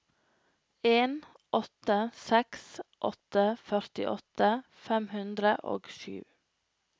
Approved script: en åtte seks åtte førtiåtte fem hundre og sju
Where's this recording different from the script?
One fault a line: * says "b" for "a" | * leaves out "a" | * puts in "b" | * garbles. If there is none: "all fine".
all fine